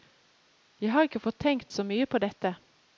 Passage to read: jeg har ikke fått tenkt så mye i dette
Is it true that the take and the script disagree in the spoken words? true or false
true